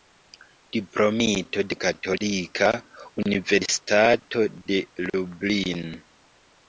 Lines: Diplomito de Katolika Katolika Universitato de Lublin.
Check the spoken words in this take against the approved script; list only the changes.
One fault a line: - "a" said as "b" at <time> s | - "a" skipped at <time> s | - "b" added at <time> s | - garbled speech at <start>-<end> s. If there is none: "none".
- "Katolika" skipped at 2.7 s